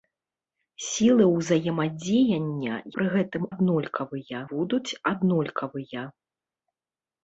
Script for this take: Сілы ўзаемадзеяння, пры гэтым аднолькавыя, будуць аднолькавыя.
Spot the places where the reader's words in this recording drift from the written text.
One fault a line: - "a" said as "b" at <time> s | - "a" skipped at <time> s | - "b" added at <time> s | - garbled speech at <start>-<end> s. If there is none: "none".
none